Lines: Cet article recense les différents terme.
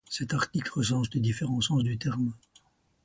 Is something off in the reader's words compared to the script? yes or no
yes